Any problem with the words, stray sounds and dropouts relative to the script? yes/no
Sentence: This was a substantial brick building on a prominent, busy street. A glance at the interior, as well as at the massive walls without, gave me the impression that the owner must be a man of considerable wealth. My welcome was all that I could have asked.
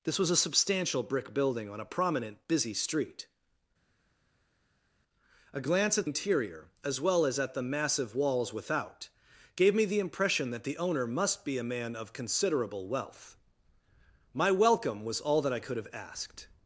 yes